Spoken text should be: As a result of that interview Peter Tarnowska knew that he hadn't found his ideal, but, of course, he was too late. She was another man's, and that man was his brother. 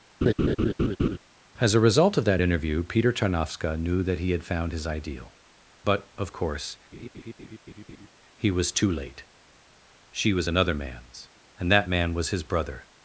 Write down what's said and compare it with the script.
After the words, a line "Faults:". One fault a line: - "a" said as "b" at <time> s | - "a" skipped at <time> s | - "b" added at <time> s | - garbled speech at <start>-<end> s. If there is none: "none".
As a result of that interview Peter Tarnowska knew that he had found his ideal, but, of course, he was too late. She was another man's, and that man was his brother.
Faults:
- "hadn't" said as "had" at 4.3 s